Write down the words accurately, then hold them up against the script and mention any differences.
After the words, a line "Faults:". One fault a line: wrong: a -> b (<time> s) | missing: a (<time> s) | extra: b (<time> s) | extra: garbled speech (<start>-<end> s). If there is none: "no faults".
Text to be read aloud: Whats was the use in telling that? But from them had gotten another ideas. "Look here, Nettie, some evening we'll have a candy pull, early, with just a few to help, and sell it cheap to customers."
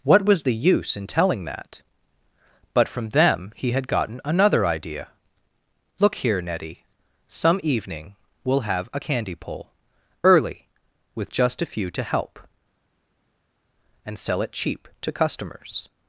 What was the use in telling that? But from them he had gotten another idea. "Look here, Nettie, some evening we'll have a candy pull, early, with just a few to help, and sell it cheap to customers."
Faults:
wrong: Whats -> What (0.0 s)
extra: he (3.5 s)
wrong: ideas -> idea (4.7 s)